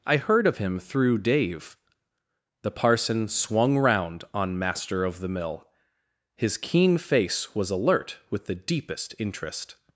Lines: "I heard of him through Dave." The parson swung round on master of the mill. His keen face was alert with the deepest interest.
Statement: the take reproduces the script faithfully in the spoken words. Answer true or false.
true